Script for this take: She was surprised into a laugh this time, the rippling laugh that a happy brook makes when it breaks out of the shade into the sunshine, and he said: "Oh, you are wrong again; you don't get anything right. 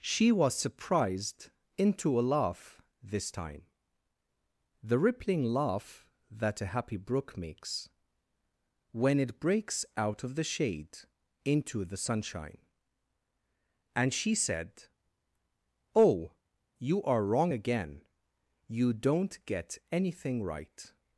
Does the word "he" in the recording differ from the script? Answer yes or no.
yes